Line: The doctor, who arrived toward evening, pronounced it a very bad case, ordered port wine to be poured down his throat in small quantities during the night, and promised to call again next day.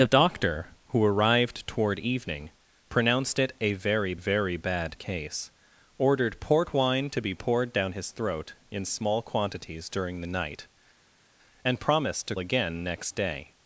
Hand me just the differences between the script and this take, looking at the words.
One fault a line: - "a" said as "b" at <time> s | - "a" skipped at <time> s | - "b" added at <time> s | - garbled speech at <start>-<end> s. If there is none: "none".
- "very" added at 4.1 s
- "call" skipped at 12.4 s